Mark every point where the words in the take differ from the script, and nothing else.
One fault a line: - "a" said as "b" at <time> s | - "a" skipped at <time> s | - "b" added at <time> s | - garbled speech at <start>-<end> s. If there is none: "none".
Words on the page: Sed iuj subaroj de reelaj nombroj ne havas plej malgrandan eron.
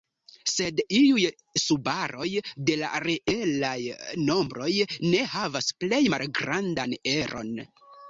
- "la" added at 2.8 s